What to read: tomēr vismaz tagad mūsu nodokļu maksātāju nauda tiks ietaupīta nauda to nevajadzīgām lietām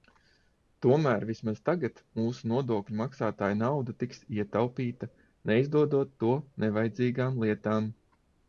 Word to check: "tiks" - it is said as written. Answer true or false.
true